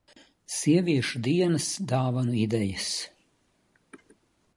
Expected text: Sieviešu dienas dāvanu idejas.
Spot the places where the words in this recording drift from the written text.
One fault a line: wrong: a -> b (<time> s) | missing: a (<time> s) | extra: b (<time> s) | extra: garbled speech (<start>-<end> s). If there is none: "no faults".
no faults